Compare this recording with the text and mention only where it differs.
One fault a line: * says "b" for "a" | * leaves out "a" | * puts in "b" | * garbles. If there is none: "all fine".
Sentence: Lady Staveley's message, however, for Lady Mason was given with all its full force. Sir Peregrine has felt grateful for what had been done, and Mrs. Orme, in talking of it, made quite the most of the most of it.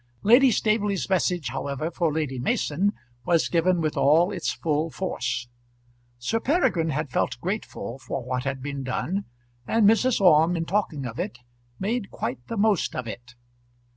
* says "had" for "has"
* leaves out "the most of"